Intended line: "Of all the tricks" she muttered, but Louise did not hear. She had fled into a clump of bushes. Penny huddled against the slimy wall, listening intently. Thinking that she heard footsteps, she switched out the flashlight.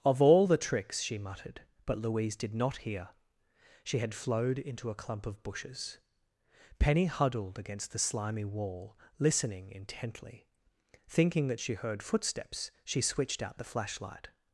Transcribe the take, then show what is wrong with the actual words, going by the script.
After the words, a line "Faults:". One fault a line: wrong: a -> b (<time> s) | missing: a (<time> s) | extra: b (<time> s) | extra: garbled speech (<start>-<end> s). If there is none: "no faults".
"Of all the tricks" she muttered, but Louise did not hear. She had flowed into a clump of bushes. Penny huddled against the slimy wall, listening intently. Thinking that she heard footsteps, she switched out the flashlight.
Faults:
wrong: fled -> flowed (4.1 s)